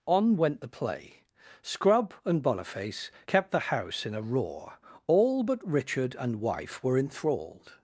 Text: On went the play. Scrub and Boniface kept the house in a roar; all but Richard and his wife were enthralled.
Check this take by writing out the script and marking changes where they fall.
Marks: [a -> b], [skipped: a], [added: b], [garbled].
On went the play. Scrub and Boniface kept the house in a roar; all but Richard and [skipped: his] wife were enthralled.